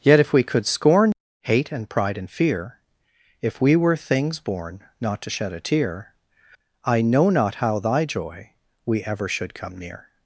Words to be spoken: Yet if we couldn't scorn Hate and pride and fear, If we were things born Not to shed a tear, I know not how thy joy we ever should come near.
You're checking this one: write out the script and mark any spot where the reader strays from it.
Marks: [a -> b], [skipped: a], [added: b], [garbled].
Yet if we [couldn't -> could] scorn Hate and pride and fear, If we were things born Not to shed a tear, I know not how thy joy we ever should come near.